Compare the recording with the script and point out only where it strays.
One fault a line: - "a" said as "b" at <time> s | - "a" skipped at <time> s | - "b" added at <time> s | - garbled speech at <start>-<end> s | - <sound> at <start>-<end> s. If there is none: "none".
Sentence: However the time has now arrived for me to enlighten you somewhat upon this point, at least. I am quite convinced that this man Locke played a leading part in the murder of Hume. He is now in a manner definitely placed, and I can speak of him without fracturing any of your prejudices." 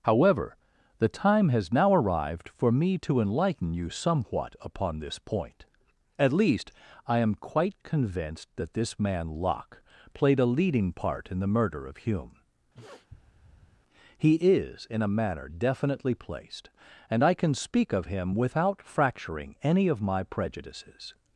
- sniff at 12.7-13.8 s
- "now" skipped at 14.9 s
- "your" said as "my" at 20.0 s